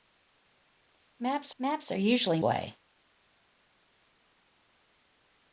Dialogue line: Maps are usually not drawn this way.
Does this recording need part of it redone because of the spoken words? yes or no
yes